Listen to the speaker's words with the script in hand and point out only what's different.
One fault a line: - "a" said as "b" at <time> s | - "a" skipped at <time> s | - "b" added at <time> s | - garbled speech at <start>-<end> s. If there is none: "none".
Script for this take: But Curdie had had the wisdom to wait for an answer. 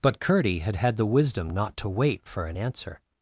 - "not" added at 1.5 s